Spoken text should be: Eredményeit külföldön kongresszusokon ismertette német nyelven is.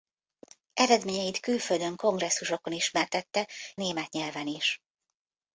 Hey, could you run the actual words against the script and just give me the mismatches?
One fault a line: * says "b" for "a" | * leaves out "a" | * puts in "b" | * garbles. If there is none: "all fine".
all fine